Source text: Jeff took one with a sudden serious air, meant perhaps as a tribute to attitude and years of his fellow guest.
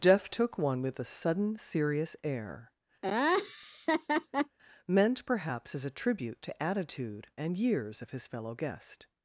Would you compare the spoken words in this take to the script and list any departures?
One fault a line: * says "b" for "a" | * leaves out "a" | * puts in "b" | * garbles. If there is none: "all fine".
all fine